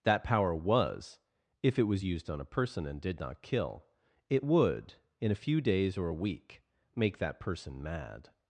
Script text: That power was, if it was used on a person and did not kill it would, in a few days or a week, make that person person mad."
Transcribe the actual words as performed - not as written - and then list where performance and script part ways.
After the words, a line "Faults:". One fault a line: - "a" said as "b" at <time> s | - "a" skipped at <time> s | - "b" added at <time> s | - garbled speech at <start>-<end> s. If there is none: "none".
That power was, if it was used on a person and did not kill it would, in a few days or a week, make that person mad."
Faults:
- "person" skipped at 7.8 s